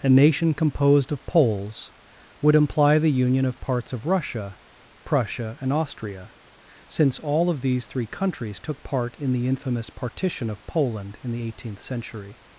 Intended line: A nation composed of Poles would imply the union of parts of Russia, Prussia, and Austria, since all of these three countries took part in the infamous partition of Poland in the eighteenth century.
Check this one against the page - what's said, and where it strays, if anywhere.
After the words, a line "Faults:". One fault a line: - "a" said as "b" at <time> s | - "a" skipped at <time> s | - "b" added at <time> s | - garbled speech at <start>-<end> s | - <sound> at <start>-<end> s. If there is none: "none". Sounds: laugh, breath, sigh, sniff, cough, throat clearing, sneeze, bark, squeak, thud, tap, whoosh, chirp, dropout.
A nation composed of Poles would imply the union of parts of Russia, Prussia, and Austria, since all of these three countries took part in the infamous partition of Poland in the eighteenth century.
Faults:
none